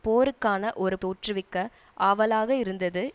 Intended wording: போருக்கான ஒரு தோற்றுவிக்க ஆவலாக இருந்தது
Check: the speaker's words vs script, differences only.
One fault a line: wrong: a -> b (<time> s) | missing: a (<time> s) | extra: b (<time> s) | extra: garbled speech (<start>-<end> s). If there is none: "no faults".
no faults